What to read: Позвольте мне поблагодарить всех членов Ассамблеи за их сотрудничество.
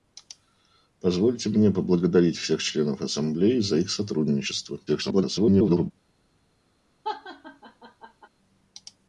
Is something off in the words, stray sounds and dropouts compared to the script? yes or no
yes